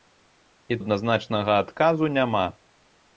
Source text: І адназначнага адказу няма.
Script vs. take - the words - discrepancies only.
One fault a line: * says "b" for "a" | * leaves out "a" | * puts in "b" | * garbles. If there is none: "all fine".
all fine